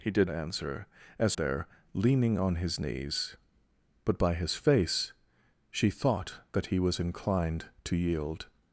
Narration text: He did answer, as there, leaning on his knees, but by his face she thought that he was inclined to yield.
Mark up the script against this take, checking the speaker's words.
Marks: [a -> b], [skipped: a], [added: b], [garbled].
He did answer, as there, leaning on his knees, but by his face she thought that he was inclined to yield.